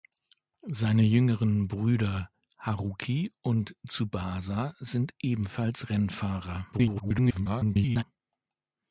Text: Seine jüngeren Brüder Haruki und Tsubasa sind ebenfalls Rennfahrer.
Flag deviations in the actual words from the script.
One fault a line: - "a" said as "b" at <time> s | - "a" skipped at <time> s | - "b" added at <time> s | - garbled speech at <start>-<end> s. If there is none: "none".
- garbled speech at 6.7-8.0 s